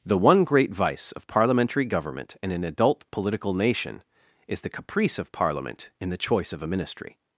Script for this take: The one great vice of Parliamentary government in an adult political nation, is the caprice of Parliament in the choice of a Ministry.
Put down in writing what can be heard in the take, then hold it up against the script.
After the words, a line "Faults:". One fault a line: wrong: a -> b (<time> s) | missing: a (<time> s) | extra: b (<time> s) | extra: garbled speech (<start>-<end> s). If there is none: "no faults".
The one great vice of Parliamentary government in an adult political nation, is the caprice of Parliament in the choice of a Ministry.
Faults:
no faults